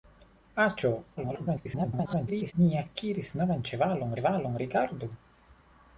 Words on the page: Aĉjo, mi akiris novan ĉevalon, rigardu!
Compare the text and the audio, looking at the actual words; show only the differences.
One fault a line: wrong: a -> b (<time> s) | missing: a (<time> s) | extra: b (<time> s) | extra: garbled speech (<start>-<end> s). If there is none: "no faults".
extra: garbled speech (1.2-2.5 s)
extra: ĉevalon (4.2 s)